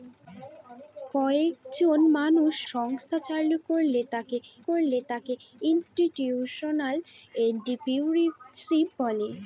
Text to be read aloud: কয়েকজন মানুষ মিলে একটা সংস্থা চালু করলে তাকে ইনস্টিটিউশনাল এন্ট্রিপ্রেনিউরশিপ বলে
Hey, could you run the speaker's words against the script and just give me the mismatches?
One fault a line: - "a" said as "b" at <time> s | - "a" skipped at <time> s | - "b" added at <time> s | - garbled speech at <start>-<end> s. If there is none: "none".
- "মিলে একটা সংস্থা চালু" said as "সংস্থা চালু করলে তাকে" at 2.7 s